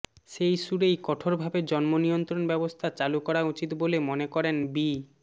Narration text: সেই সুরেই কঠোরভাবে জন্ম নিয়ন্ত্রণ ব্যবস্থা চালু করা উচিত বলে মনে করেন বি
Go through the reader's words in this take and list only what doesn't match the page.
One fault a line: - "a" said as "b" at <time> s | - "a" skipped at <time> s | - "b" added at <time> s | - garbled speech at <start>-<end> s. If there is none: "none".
none